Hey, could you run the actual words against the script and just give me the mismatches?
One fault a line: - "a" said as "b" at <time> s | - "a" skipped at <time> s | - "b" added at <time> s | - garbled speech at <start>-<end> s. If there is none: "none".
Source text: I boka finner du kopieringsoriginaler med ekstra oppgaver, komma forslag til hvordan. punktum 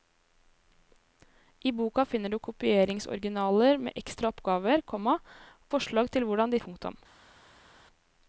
none